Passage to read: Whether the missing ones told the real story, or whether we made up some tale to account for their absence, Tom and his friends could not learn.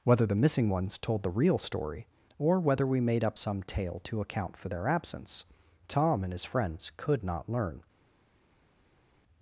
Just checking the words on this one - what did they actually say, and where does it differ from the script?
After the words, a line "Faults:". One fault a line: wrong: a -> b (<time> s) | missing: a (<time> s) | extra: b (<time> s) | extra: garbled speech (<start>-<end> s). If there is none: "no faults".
Whether the missing ones told the real story, or whether we made up some tale to account for their absence, Tom and his friends could not learn.
Faults:
no faults